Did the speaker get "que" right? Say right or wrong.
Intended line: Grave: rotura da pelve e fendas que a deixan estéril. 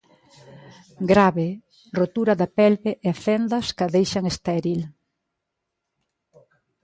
right